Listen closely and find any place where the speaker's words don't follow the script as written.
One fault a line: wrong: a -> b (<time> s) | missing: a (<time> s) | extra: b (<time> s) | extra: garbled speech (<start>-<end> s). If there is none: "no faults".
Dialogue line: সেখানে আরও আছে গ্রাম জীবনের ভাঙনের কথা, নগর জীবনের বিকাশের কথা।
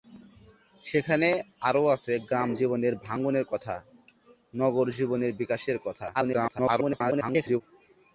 extra: garbled speech (6.1-7.6 s)